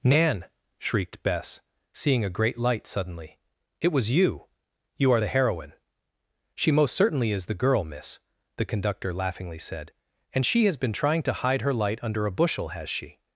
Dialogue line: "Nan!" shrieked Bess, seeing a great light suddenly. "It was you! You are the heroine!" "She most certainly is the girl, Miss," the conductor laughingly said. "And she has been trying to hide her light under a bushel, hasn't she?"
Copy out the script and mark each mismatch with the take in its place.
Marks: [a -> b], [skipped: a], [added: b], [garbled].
"Nan!" shrieked Bess, seeing a great light suddenly. "It was you! You are the heroine!" "She most certainly is the girl, Miss," the conductor laughingly said. "And she has been trying to hide her light under a bushel, [hasn't -> has] she?"